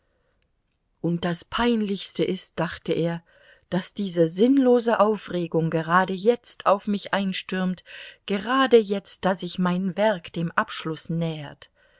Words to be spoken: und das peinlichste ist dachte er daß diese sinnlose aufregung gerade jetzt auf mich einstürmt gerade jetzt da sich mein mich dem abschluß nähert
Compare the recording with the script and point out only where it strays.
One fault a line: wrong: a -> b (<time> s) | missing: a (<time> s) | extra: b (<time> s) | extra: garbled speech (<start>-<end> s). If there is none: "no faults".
wrong: mich -> werk (10.0 s)